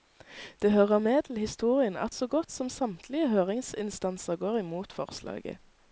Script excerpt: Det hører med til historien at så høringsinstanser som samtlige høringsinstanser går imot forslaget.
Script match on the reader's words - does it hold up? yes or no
no